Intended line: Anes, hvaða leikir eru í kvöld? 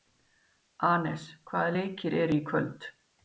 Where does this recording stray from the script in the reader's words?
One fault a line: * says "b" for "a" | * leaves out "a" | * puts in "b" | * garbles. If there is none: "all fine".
all fine